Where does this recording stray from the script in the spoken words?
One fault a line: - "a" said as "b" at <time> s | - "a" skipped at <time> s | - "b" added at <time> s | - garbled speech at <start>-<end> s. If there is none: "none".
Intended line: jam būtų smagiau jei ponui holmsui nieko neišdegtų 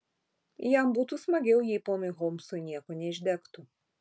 none